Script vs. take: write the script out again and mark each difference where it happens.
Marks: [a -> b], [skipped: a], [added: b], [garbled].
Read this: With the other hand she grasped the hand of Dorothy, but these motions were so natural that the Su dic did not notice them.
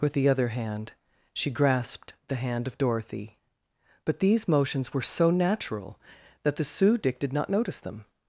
With the other hand she grasped the hand of Dorothy, but these motions were so natural that the Su dic did not notice them.